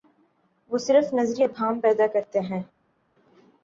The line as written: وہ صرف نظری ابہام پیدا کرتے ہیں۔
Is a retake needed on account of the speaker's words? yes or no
no